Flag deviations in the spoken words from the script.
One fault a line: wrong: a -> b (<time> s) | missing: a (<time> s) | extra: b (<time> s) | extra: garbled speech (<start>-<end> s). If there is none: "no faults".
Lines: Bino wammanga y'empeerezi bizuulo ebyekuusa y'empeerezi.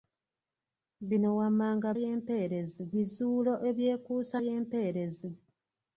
no faults